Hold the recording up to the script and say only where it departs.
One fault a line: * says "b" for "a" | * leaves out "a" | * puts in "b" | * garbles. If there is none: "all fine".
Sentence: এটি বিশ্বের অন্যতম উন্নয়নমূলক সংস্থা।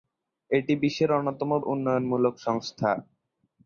all fine